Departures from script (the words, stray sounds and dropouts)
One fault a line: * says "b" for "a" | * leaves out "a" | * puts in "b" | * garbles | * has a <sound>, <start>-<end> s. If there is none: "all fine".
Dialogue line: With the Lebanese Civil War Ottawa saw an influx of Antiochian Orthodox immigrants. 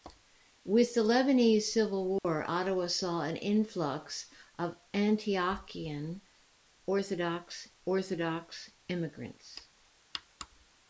* has a dropout, 2.2-2.2 s
* puts in "Orthodox"